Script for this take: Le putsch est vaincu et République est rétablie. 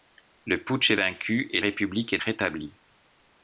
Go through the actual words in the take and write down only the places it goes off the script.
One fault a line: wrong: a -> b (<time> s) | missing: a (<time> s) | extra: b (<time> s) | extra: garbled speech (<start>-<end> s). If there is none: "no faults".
no faults